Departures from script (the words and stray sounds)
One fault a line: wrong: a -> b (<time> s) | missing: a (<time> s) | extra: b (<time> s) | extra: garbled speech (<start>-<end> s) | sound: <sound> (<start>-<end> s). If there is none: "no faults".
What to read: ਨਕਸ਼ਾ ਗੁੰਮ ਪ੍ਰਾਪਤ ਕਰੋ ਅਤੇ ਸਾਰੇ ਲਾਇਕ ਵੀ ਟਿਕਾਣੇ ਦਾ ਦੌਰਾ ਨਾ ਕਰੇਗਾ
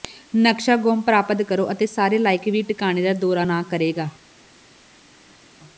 no faults